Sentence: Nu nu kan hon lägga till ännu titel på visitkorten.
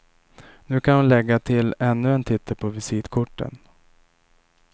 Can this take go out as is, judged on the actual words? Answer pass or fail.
fail